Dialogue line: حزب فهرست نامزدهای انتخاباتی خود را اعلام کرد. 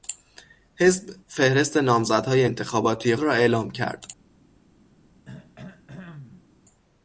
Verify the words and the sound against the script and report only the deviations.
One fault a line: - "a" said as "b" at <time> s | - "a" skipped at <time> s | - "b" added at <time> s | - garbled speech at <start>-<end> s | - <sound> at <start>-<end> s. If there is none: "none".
- "خود" skipped at 3.1 s
- throat clearing at 5.3-6.5 s